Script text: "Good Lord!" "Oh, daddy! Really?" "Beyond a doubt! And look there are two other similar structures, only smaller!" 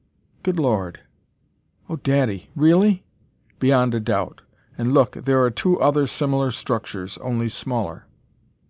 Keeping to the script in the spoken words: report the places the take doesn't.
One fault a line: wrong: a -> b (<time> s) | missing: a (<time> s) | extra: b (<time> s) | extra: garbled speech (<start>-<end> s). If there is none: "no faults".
no faults